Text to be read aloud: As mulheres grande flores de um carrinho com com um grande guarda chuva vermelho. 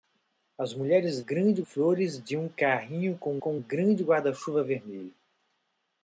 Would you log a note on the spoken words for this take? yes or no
no